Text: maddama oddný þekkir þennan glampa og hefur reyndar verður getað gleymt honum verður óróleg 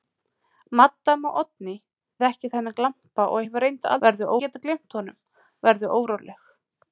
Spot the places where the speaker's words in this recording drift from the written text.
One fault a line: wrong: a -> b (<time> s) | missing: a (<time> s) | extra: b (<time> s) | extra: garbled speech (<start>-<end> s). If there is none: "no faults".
no faults